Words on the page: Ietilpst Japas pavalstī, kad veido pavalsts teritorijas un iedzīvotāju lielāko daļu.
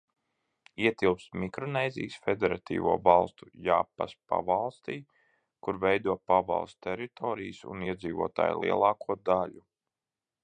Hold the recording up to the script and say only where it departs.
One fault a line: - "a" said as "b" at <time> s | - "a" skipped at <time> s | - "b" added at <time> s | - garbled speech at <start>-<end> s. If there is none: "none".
- "Mikronēzijas Federatīvo Valstu" added at 1.4 s
- "kad" said as "kur" at 5.7 s